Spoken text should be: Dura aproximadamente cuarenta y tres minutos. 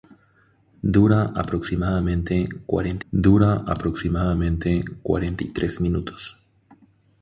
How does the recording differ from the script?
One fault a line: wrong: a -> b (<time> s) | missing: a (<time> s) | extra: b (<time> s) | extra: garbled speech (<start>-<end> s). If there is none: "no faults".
extra: dura aproximadamente cuarenta (3.1 s)